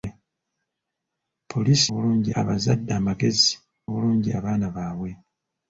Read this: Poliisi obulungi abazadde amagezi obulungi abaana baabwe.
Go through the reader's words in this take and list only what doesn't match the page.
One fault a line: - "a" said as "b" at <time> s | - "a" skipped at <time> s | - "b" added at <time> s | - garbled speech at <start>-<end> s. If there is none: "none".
none